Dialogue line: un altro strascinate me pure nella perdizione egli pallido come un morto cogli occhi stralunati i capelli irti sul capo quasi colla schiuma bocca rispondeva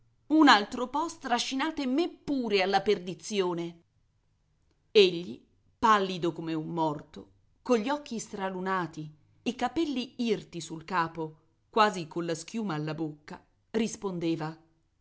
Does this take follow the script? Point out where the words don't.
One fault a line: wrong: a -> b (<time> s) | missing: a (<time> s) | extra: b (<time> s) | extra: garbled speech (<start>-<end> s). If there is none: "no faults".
extra: po (0.9 s)
wrong: nella -> alla (2.6 s)
extra: alla (12.8 s)